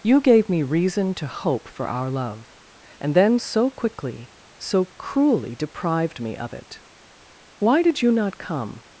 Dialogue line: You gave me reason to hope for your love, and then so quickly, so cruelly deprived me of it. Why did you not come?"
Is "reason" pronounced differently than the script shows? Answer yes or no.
no